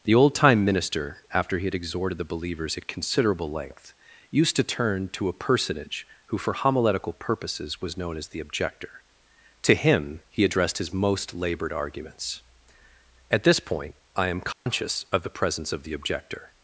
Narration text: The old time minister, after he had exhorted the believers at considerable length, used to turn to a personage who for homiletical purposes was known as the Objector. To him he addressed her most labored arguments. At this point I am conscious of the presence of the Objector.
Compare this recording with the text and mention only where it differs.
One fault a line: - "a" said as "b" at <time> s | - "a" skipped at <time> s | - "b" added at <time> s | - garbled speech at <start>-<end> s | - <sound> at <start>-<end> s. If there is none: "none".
- "her" said as "his" at 10.8 s
- dropout at 14.5-14.7 s